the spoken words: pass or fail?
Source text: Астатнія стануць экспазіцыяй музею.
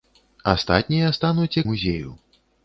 fail